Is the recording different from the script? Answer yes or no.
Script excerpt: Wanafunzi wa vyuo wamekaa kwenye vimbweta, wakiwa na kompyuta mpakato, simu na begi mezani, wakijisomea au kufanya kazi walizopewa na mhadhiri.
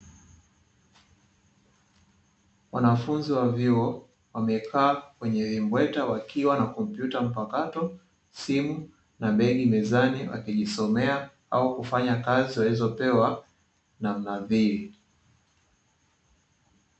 no